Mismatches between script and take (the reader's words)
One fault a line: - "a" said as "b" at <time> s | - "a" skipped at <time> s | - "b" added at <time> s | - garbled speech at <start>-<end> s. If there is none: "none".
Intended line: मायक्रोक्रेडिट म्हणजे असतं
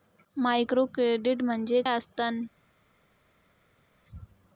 none